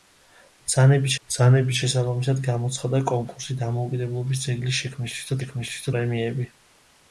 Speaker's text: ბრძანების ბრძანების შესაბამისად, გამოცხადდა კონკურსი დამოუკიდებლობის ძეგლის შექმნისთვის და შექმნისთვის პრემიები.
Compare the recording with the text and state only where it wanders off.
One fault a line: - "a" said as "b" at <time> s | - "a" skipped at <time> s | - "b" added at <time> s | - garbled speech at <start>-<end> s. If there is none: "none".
none